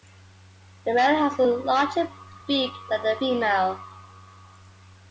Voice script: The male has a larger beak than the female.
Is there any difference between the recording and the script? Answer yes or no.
no